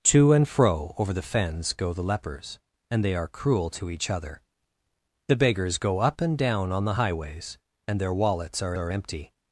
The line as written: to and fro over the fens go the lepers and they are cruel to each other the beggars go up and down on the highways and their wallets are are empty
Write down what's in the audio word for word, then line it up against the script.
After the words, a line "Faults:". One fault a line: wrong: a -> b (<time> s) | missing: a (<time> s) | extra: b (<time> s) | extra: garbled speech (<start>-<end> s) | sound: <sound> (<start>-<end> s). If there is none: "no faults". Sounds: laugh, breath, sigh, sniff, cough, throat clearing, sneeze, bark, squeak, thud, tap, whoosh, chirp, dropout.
to and fro over the fens go the lepers and they are cruel to each other the beggars go up and down on the highways and their wallets are are empty
Faults:
no faults